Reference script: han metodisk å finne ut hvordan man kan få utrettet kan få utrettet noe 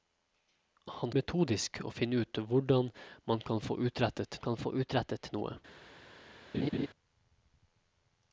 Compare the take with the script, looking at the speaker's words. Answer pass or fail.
pass